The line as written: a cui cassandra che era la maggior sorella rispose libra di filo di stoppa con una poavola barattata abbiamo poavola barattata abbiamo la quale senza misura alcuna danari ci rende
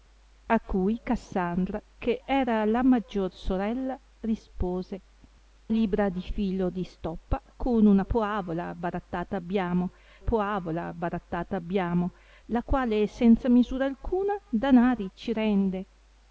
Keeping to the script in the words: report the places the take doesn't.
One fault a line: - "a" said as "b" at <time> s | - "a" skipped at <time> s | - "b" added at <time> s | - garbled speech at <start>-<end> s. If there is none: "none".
none